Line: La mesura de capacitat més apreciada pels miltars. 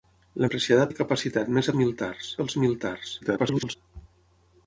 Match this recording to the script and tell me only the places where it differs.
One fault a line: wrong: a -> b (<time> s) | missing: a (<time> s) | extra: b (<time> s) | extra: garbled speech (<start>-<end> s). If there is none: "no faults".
wrong: mesura -> apreciada (0.5 s)
wrong: apreciada -> miltars (1.8 s)
extra: garbled speech (3.2-3.8 s)